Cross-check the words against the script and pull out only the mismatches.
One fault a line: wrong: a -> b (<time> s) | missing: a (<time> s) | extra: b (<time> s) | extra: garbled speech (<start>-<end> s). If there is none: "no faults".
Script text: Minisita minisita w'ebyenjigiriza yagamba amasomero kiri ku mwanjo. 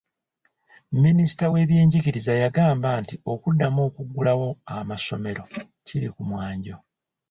missing: minisita (1.4 s)
extra: nti okuddamu okuggulawo (3.0 s)